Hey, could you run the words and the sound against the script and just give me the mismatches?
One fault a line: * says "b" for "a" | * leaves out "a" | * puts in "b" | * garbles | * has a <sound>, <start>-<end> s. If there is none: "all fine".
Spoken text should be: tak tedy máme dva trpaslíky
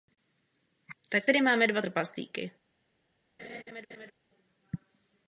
* has a laugh, 3.4-4.1 s